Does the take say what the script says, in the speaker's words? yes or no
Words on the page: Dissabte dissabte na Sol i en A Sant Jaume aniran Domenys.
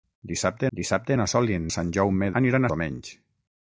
yes